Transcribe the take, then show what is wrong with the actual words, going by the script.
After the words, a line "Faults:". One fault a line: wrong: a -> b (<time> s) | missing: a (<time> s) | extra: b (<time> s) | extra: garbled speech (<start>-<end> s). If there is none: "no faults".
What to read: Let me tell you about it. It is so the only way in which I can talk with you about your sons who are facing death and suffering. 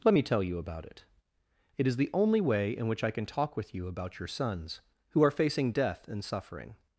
Let me tell you about it. It is the only way in which I can talk with you about your sons who are facing death and suffering.
Faults:
missing: so (2.0 s)